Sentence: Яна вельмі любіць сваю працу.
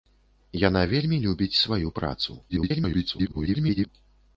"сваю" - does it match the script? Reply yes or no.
yes